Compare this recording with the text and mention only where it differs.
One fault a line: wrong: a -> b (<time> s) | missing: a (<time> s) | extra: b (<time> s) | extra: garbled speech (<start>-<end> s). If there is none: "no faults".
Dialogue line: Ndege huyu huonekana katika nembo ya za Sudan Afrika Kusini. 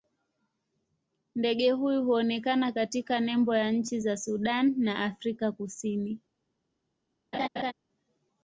extra: nchi (3.7 s)
extra: na (4.8 s)